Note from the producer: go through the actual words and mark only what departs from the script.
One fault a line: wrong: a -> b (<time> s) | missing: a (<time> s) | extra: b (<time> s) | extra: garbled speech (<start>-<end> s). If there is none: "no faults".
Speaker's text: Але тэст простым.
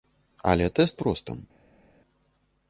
no faults